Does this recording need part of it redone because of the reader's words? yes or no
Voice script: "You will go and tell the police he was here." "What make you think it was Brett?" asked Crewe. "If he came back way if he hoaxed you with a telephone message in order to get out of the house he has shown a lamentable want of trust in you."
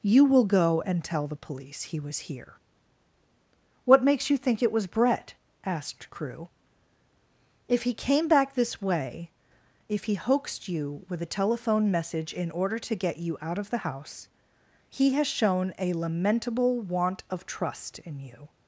yes